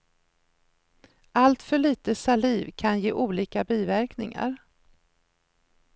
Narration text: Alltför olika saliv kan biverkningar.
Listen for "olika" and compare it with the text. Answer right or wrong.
wrong